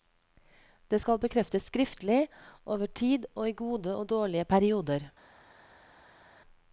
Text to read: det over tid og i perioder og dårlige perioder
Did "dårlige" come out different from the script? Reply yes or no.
no